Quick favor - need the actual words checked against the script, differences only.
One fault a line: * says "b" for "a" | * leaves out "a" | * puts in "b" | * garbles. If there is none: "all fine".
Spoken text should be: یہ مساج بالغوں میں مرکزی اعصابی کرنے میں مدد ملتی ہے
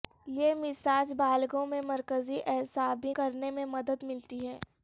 all fine